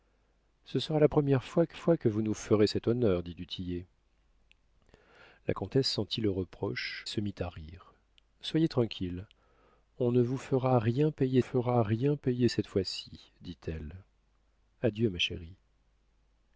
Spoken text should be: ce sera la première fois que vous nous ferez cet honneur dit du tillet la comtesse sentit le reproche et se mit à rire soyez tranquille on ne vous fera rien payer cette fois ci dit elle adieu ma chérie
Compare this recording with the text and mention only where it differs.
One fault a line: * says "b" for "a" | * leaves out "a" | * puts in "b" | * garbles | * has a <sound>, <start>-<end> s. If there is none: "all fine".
* puts in "fois que"
* leaves out "et"
* puts in "fera rien payer"